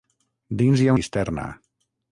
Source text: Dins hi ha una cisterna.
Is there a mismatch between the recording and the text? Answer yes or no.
yes